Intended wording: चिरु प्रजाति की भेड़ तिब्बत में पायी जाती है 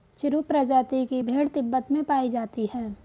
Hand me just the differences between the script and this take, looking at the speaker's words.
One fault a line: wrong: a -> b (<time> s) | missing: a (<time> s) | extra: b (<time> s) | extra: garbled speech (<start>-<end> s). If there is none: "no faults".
no faults